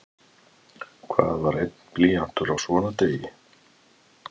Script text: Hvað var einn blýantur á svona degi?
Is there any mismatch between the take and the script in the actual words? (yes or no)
no